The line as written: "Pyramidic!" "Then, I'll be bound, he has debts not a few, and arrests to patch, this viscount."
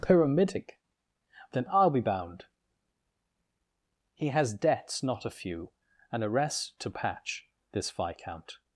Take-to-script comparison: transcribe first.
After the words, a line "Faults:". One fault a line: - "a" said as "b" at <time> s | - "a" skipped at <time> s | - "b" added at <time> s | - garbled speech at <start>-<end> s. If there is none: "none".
"Pyramidic!" "Then, I'll be bound, he has debts not a few, and arrests to patch, this viscount."
Faults:
none